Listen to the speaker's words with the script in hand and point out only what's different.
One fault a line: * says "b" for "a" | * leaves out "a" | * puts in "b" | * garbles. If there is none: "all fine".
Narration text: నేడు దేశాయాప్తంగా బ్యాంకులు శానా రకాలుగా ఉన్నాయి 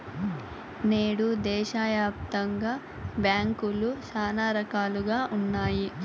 all fine